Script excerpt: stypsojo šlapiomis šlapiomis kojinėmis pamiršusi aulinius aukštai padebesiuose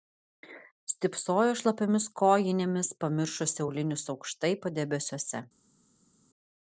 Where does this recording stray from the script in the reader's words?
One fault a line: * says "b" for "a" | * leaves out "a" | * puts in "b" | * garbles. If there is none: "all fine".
* leaves out "šlapiomis"